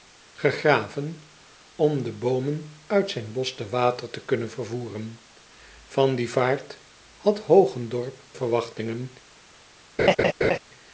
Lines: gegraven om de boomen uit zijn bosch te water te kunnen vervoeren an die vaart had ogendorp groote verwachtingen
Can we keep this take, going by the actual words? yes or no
no